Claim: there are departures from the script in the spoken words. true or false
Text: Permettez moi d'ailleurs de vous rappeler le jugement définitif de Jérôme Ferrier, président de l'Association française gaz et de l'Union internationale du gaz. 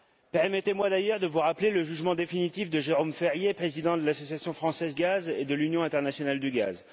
false